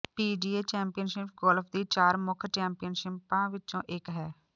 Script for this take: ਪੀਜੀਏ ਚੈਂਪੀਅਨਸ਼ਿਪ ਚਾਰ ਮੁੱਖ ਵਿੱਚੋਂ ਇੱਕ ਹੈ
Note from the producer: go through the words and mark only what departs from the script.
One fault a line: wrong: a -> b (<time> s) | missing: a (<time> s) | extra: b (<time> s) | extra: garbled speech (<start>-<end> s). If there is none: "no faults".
extra: ਗੋਲਫ ਦੀ (1.4 s)
extra: ਚੈਂਪੀਅਨਸ਼ਿਪਾਂ (2.5 s)